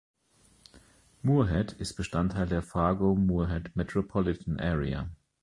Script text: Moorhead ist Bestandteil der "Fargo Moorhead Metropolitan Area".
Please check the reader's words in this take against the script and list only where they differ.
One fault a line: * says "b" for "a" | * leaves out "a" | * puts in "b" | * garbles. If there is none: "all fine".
all fine